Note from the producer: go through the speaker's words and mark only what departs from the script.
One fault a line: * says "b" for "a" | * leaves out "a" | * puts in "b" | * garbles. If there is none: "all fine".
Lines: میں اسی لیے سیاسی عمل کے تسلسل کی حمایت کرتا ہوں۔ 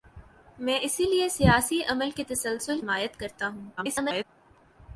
* leaves out "کی"
* garbles